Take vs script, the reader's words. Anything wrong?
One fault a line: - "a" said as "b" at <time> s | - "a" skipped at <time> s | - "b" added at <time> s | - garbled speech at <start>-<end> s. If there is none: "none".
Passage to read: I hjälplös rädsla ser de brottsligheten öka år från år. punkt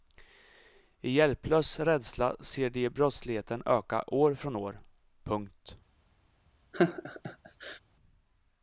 none